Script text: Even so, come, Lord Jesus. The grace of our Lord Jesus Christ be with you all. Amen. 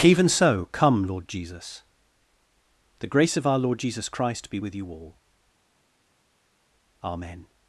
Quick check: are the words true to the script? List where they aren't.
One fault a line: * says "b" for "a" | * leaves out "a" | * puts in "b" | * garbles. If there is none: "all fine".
all fine